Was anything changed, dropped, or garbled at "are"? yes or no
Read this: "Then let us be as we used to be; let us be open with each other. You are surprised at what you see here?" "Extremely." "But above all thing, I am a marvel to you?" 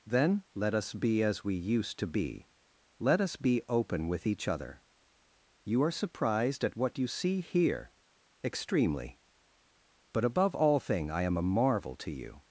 no